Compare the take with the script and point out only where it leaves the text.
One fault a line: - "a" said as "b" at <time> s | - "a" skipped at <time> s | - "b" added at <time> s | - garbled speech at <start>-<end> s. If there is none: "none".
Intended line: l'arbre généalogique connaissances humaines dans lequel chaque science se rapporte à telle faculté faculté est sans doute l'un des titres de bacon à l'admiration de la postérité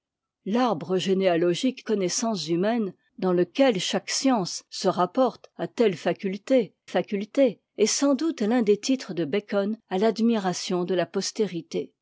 none